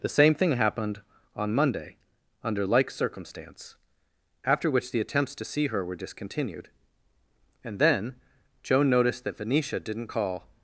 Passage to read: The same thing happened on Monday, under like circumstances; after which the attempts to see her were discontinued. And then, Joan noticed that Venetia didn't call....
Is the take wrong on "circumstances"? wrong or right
wrong